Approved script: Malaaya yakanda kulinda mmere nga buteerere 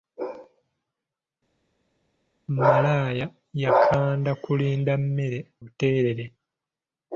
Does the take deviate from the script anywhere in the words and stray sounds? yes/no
yes